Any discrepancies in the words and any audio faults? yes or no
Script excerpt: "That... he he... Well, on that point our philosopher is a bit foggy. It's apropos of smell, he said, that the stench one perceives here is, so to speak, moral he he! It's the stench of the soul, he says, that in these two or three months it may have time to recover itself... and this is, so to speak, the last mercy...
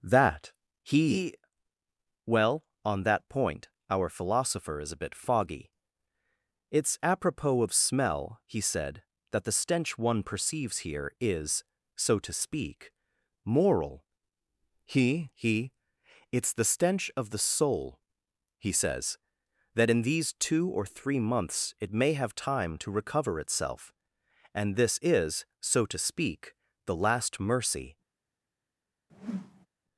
yes